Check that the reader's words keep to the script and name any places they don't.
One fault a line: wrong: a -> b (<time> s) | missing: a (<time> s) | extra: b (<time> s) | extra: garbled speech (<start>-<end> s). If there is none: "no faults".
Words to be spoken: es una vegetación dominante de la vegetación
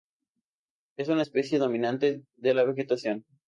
wrong: vegetación -> especie (1.2 s)